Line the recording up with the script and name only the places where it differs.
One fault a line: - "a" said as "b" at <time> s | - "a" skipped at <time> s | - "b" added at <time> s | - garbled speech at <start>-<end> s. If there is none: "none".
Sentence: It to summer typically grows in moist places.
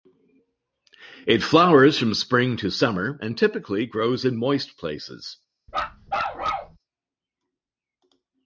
- "flowers from spring" added at 1.4 s
- "and" added at 3.2 s